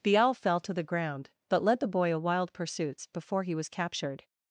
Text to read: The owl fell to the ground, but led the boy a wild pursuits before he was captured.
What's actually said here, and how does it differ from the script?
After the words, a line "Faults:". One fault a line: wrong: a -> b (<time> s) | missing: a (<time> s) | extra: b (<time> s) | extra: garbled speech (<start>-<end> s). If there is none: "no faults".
The owl fell to the ground, but led the boy a wild pursuits before he was captured.
Faults:
no faults